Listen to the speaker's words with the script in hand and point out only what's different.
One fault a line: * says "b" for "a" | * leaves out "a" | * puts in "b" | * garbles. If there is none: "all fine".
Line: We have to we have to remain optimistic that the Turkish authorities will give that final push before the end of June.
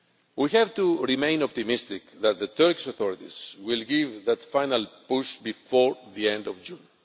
* leaves out "we have to"